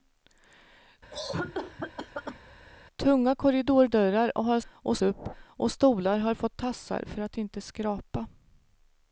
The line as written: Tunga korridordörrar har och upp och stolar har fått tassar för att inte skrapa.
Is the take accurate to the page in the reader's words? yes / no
yes